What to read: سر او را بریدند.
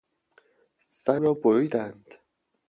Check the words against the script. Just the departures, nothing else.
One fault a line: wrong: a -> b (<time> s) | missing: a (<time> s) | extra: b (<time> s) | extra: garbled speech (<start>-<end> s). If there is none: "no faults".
missing: او (1.2 s)